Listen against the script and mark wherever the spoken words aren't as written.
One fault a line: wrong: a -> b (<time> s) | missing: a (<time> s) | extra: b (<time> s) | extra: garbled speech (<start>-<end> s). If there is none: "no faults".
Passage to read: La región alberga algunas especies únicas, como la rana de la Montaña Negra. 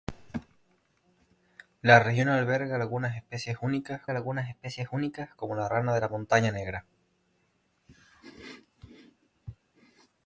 extra: algunas especies únicas (4.1 s)